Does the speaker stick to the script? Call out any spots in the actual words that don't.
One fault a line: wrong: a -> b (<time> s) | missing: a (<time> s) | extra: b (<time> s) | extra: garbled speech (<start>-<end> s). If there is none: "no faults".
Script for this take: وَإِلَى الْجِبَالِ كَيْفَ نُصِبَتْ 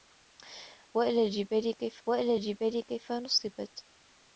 extra: وَإِلَى الْجِبَالِ كَيْفَ (2.1 s)